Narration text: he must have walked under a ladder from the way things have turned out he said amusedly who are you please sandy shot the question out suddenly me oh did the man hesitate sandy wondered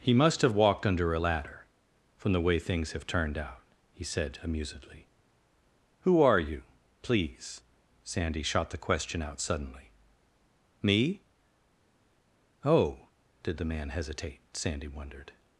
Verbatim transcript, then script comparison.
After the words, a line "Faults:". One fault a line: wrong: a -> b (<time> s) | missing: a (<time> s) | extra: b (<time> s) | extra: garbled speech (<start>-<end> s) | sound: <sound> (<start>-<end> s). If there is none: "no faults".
he must have walked under a ladder from the way things have turned out he said amusedly who are you please sandy shot the question out suddenly me oh did the man hesitate sandy wondered
Faults:
no faults